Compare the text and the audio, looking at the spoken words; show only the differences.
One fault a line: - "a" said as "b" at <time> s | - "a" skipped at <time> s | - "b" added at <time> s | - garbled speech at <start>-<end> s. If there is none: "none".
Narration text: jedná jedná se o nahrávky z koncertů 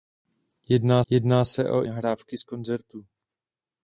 none